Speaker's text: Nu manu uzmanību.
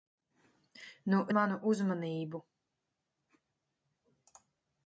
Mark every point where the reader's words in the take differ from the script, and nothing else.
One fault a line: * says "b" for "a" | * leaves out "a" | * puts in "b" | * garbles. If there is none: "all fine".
all fine